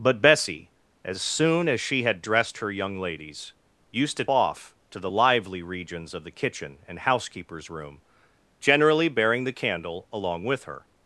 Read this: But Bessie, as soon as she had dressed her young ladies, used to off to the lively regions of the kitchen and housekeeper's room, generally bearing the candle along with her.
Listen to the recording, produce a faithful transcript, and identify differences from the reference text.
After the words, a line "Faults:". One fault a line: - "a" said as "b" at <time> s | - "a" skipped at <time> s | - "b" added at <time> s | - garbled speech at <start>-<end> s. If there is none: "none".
But Bessie, as soon as she had dressed her young ladies, used to off to the lively regions of the kitchen and housekeeper's room, generally bearing the candle along with her.
Faults:
none